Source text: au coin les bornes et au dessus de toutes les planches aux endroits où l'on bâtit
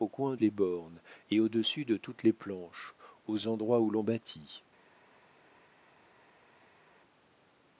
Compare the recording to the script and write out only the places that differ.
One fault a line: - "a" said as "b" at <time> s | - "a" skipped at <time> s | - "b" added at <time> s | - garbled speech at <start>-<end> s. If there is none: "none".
none